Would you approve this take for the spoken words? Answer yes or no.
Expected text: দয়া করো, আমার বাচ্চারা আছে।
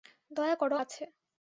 no